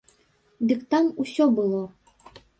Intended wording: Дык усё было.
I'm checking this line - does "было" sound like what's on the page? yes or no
yes